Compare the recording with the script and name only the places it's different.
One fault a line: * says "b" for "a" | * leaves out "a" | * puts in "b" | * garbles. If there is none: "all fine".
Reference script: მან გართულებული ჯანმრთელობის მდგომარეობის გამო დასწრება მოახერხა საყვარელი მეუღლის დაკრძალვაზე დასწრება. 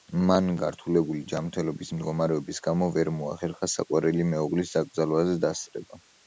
* says "ვერ" for "დასწრება"